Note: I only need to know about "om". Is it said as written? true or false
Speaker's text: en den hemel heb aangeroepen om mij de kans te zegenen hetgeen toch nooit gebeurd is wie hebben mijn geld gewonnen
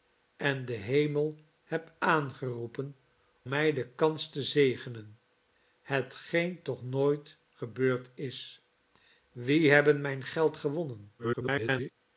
false